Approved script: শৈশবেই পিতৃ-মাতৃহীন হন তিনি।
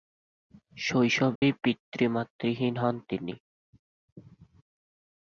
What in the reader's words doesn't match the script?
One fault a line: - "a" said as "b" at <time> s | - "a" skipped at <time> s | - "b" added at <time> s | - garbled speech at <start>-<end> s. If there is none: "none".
none